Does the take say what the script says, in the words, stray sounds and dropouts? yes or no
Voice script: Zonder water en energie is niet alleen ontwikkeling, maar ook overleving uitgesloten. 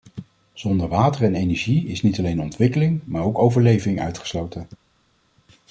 yes